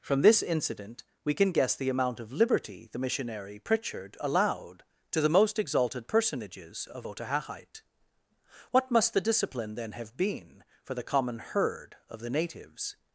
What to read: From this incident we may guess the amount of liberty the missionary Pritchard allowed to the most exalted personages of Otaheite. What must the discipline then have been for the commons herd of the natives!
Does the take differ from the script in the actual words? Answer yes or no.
yes